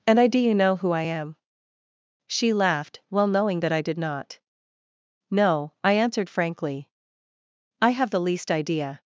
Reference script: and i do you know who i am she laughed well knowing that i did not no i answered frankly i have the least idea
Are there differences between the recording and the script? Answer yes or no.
no